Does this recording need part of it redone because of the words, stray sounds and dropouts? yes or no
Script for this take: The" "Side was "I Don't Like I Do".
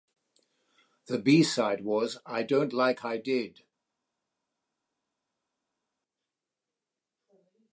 yes